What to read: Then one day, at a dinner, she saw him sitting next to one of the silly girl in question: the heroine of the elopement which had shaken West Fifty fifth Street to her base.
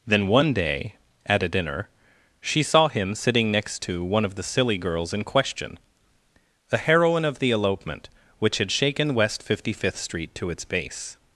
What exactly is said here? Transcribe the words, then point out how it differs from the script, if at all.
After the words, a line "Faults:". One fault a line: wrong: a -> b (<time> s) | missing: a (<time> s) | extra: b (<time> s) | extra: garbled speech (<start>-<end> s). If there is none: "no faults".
Then one day, at a dinner, she saw him sitting next to one of the silly girls in question: the heroine of the elopement which had shaken West Fifty fifth Street to its base.
Faults:
wrong: girl -> girls (4.8 s)
wrong: her -> its (10.5 s)